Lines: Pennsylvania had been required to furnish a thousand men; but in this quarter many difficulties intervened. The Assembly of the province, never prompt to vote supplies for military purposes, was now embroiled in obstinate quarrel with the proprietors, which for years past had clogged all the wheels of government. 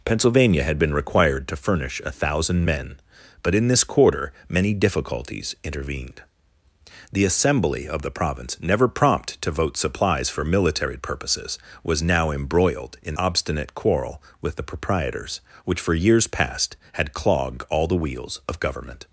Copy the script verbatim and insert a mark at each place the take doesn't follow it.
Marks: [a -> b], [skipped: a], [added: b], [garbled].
Pennsylvania had been required to furnish a thousand men; but in this quarter many difficulties intervened. The Assembly of the province, never prompt to vote supplies for military purposes, was now embroiled in obstinate quarrel with the proprietors, which for years past had clogged all the wheels of government.